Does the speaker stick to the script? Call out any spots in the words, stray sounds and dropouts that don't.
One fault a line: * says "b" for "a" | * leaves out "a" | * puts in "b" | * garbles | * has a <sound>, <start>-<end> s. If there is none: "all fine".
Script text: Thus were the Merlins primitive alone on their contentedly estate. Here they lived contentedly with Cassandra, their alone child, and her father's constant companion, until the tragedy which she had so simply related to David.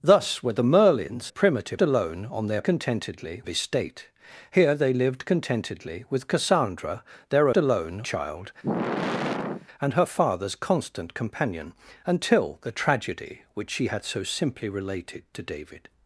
* has a sigh, 8.6-9.7 s